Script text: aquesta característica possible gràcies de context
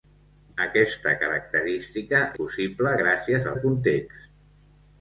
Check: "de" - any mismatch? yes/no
no